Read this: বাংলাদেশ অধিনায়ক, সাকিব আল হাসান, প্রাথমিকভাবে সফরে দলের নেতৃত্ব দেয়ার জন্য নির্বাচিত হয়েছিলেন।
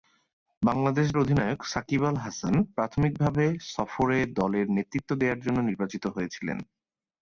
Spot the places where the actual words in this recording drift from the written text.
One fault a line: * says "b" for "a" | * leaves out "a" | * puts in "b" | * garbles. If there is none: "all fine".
all fine